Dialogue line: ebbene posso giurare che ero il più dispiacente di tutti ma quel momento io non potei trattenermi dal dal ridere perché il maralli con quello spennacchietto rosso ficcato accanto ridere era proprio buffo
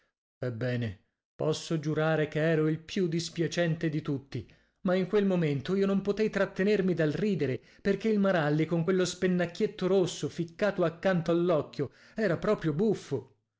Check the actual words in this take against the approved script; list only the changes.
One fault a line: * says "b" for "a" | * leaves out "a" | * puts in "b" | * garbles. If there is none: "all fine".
* puts in "in"
* leaves out "dal"
* says "all'occhio" for "ridere"